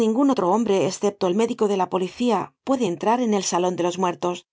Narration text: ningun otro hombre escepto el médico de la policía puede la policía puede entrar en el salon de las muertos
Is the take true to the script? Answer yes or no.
no